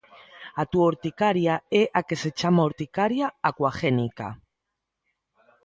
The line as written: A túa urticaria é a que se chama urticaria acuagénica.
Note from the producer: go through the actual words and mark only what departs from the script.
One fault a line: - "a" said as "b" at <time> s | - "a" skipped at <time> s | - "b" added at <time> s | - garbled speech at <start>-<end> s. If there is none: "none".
none